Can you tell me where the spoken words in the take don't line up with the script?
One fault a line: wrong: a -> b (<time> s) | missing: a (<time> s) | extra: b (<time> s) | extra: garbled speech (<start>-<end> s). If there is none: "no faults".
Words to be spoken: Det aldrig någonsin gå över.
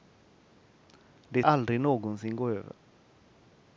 no faults